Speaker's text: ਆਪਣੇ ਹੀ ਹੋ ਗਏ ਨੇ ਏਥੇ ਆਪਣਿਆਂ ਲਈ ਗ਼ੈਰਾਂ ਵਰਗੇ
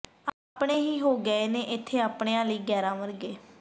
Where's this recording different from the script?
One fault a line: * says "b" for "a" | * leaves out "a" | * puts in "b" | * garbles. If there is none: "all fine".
all fine